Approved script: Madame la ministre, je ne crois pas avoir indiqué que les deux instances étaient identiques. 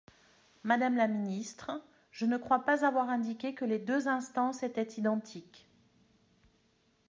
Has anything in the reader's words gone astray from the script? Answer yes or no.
no